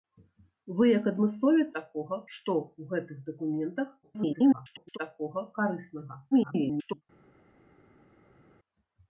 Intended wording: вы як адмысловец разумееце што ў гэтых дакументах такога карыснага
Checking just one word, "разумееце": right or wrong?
wrong